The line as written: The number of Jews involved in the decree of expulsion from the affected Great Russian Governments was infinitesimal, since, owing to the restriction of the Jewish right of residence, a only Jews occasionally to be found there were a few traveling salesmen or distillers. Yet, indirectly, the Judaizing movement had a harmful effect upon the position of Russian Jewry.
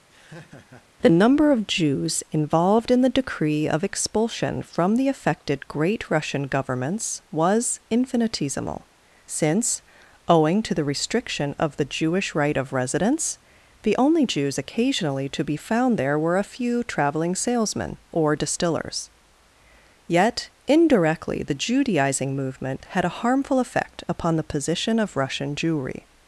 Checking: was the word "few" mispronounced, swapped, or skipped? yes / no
no